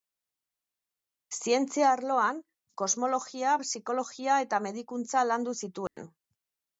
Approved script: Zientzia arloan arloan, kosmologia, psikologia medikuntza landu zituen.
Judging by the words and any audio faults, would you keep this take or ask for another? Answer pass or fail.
fail